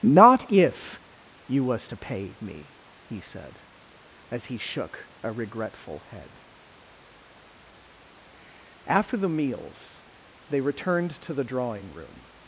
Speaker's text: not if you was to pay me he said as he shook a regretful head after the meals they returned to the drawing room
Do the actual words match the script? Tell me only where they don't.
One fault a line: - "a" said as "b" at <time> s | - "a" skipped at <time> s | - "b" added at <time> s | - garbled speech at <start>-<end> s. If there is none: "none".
none